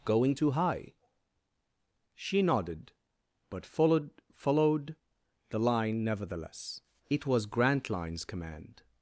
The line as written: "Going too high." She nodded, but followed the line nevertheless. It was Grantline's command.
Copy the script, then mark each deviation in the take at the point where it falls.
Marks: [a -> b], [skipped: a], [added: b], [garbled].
"Going too high." She nodded, but followed [added: followed] the line nevertheless. It was Grantline's command.